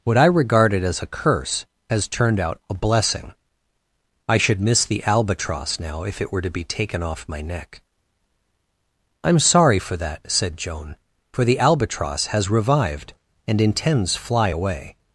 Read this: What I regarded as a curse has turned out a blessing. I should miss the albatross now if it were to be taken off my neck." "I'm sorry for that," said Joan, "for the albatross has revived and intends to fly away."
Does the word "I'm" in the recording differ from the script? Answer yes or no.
no